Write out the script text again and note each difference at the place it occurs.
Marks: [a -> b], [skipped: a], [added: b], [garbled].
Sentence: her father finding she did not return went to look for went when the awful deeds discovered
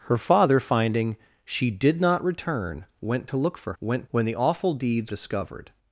her father finding she did not return went to look for went when the awful deeds discovered